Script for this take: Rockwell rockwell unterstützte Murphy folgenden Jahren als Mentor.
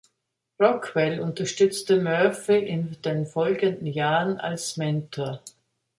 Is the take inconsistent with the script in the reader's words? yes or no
yes